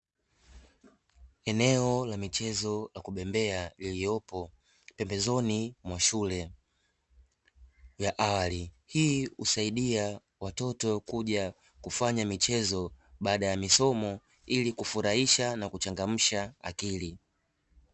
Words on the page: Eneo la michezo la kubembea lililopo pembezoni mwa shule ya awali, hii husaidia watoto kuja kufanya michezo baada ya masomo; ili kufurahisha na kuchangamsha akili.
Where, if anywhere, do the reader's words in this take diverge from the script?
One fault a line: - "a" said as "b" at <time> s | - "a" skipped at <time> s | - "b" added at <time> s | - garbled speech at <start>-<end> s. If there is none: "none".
none